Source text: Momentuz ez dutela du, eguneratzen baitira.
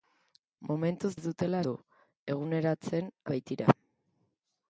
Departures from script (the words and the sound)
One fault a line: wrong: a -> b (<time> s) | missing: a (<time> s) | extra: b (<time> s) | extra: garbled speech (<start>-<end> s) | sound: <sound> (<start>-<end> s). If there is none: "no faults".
no faults